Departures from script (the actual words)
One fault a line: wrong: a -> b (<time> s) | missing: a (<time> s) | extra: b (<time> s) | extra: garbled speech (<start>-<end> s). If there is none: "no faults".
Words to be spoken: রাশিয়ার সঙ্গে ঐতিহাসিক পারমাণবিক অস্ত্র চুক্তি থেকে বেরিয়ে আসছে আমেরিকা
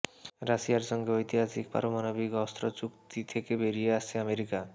no faults